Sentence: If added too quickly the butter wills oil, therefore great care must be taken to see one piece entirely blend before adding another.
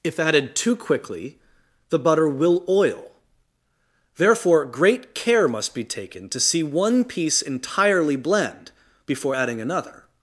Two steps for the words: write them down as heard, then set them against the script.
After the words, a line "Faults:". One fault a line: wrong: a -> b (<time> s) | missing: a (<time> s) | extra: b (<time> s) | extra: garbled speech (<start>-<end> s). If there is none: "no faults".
If added too quickly the butter will oil, therefore great care must be taken to see one piece entirely blend before adding another.
Faults:
wrong: wills -> will (2.3 s)